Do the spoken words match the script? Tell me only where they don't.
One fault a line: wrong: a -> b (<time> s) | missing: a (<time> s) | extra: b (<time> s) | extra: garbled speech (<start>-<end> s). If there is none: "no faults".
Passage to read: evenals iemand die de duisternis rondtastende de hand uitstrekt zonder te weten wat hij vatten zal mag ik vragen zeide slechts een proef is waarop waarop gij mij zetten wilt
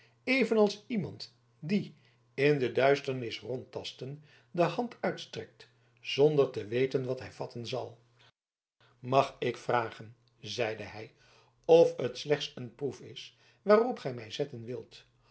extra: in (2.3 s)
extra: hij of het (10.8 s)
missing: waarop (14.0 s)